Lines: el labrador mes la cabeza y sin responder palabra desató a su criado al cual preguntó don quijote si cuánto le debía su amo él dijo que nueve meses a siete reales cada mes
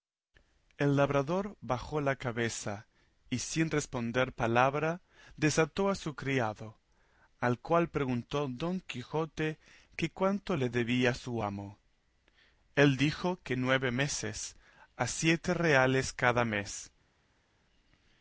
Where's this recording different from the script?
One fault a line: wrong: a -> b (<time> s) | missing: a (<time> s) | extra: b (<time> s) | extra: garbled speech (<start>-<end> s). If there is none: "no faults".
wrong: mes -> bajó (1.6 s)
wrong: si -> que (9.9 s)